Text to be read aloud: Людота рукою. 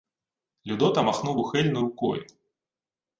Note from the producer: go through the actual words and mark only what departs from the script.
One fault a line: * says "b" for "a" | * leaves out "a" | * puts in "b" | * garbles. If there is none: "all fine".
* puts in "махнув ухильно"